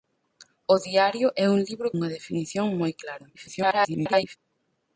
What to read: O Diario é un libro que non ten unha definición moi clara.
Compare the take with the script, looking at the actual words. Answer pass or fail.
fail